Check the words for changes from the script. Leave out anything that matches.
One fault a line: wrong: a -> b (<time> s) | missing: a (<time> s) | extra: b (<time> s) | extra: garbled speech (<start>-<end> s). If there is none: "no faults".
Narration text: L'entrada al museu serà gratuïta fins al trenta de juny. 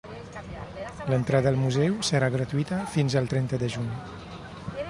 no faults